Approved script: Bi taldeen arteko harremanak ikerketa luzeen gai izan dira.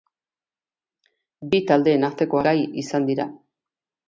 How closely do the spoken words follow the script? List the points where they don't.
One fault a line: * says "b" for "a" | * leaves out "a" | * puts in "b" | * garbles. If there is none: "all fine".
* leaves out "harremanak ikerketa luzeen"